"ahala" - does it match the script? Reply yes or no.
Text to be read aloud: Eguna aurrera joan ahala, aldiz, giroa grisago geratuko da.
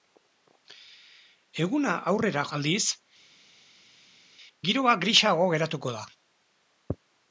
no